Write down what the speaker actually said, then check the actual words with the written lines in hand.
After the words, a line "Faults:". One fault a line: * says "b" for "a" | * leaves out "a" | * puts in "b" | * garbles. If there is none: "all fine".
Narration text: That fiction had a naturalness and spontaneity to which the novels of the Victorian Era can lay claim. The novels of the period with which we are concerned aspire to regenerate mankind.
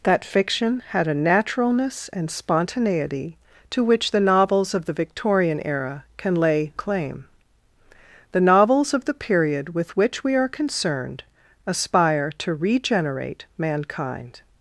That fiction had a naturalness and spontaneity to which the novels of the Victorian Era can lay claim. The novels of the period with which we are concerned aspire to regenerate mankind.
Faults:
all fine